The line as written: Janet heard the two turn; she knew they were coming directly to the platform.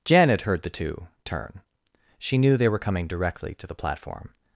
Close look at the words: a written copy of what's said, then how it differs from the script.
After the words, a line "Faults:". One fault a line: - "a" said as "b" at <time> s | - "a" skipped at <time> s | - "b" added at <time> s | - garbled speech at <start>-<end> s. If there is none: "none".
Janet heard the two turn; she knew they were coming directly to the platform.
Faults:
none